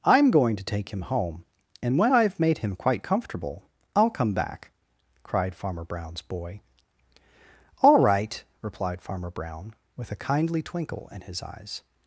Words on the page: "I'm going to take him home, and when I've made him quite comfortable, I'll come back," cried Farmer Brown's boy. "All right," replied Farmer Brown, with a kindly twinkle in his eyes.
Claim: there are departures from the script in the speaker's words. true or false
false